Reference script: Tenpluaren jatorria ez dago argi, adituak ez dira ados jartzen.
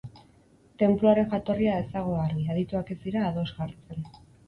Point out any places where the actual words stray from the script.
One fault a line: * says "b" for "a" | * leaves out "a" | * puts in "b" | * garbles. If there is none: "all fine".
all fine